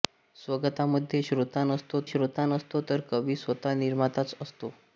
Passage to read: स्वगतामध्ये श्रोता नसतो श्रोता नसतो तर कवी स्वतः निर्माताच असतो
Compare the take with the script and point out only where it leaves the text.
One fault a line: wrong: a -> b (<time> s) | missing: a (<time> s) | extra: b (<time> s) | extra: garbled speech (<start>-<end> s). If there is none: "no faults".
no faults